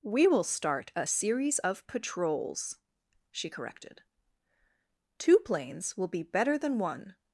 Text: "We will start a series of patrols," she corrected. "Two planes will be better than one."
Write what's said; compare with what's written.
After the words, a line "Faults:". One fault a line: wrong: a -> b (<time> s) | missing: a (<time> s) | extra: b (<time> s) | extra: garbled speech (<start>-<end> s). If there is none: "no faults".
"We will start a series of patrols," she corrected. "Two planes will be better than one."
Faults:
no faults